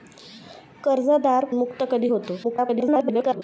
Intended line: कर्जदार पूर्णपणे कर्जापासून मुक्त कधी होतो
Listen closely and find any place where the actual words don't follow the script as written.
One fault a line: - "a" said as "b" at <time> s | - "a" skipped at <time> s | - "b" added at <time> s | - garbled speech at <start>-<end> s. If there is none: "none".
- "पूर्णपणे कर्जापासून" skipped at 1.4 s
- garbled speech at 2.4-3.4 s